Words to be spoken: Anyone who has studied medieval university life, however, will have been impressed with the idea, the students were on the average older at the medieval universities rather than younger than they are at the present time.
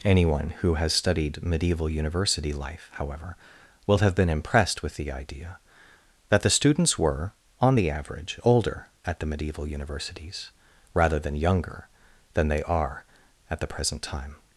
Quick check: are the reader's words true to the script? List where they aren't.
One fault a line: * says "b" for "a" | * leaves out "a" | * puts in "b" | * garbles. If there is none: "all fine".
* puts in "that"